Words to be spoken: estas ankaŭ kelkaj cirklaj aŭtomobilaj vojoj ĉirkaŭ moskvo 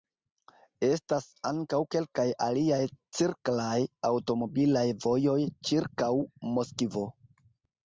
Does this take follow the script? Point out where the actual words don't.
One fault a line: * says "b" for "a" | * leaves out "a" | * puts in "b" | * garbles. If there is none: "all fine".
* puts in "aliaj"